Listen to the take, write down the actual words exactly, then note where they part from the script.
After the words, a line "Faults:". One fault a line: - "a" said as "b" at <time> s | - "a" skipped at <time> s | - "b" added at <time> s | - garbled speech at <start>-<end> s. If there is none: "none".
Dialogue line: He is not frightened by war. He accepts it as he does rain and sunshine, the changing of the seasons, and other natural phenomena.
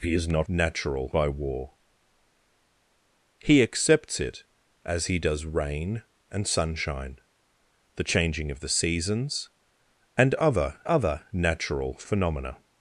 He is not natural by war. He accepts it as he does rain and sunshine, the changing of the seasons, and other other natural phenomena.
Faults:
- "frightened" said as "natural" at 0.5 s
- "other" added at 10.8 s